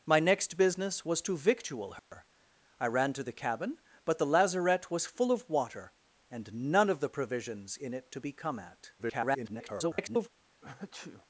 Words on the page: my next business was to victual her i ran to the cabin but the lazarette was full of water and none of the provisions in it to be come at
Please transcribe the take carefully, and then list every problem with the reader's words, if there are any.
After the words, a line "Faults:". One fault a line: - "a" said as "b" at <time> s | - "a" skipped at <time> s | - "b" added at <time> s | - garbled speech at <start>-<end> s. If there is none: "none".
my next business was to victual her i ran to the cabin but the lazarette was full of water and none of the provisions in it to be come at [garbled]
Faults:
- garbled speech at 9.0-10.3 s